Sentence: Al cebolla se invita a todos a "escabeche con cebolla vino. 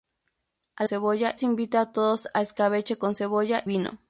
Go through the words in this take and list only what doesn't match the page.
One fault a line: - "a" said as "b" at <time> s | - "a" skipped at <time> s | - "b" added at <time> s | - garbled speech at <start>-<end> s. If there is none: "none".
none